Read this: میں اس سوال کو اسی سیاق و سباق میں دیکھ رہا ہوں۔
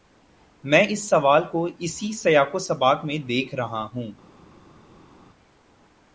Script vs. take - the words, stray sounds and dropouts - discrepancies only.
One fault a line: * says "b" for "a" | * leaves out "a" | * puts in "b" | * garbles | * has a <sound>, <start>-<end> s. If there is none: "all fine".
all fine